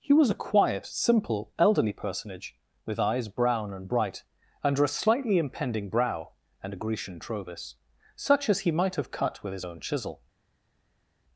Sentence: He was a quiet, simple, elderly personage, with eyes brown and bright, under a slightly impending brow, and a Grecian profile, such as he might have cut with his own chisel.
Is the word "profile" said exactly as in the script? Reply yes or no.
no